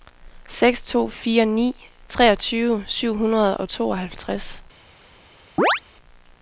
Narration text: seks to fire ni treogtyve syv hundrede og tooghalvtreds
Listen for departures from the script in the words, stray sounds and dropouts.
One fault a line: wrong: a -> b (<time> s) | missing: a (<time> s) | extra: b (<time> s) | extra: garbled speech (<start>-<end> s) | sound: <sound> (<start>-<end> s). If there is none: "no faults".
sound: chirp (5.6-5.8 s)